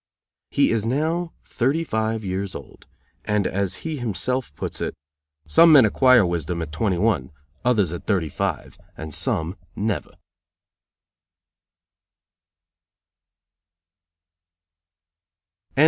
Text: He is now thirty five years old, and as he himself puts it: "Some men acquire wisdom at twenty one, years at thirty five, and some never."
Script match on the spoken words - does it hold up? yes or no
no